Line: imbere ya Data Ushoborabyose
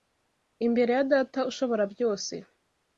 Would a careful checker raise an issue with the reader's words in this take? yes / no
no